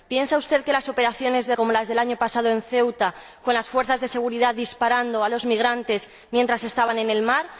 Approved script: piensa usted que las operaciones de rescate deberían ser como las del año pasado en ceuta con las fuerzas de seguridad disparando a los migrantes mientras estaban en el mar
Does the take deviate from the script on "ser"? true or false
true